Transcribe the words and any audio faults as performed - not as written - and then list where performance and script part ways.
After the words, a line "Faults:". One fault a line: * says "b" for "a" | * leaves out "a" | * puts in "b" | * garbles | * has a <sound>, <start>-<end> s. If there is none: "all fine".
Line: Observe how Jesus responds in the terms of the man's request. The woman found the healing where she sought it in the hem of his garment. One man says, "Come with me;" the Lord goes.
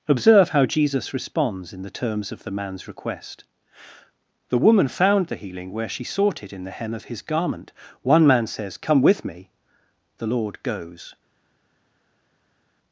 Observe how Jesus responds in the terms of the man's request. The woman found the healing where she sought it in the hem of his garment. One man says, "Come with me;" the Lord goes.
Faults:
all fine